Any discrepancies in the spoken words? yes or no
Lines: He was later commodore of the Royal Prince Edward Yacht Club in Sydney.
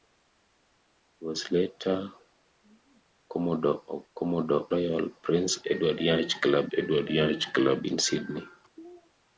yes